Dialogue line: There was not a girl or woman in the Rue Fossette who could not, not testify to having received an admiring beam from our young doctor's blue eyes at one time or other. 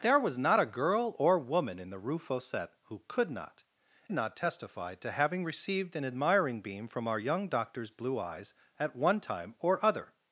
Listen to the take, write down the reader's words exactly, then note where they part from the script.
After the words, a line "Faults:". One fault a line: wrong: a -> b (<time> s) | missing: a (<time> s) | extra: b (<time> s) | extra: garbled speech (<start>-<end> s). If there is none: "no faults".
There was not a girl or woman in the Rue Fossette who could not, not testify to having received an admiring beam from our young doctor's blue eyes at one time or other.
Faults:
no faults